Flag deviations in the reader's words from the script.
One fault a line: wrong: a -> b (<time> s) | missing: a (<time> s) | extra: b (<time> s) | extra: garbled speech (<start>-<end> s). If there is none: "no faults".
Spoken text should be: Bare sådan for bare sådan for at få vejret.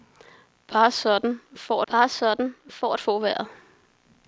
no faults